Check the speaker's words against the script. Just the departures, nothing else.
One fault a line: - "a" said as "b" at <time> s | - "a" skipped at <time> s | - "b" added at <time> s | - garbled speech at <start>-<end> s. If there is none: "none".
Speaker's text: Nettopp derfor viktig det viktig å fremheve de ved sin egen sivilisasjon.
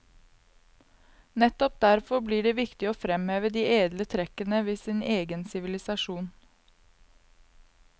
- "viktig" said as "blir" at 2.2 s
- "edle trekkene" added at 3.8 s